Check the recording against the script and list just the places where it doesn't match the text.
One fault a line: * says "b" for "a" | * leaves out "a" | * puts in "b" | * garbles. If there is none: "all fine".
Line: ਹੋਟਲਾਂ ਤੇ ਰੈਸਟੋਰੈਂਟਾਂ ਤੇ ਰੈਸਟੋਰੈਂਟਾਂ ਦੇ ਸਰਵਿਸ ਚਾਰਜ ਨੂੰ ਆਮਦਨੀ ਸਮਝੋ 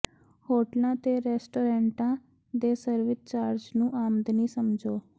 * leaves out "ਤੇ ਰੈਸਟੋਰੈਂਟਾਂ"